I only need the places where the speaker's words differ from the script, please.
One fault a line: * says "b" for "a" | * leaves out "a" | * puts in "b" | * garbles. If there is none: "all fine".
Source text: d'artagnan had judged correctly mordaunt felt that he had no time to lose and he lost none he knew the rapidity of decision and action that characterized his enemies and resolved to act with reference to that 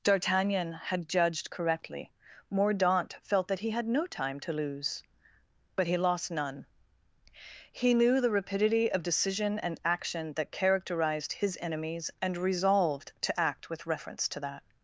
* says "but" for "and"